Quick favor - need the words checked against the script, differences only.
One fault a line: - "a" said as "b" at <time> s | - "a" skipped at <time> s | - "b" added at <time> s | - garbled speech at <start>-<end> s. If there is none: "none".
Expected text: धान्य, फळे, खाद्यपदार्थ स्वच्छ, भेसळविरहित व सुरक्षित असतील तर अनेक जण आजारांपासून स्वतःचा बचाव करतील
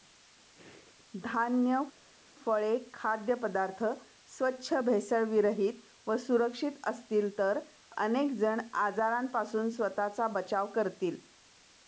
none